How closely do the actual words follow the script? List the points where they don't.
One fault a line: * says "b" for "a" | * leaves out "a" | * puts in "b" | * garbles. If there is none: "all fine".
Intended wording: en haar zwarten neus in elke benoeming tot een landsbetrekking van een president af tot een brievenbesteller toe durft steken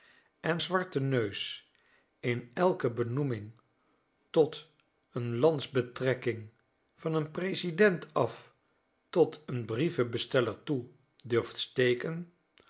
* leaves out "haar"